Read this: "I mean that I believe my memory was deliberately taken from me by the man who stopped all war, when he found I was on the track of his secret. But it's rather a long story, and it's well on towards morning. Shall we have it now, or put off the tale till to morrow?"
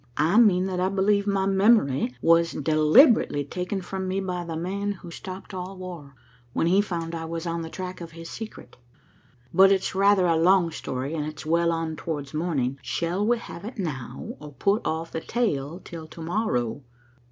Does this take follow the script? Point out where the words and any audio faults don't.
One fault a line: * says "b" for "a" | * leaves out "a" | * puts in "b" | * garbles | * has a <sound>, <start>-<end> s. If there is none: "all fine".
all fine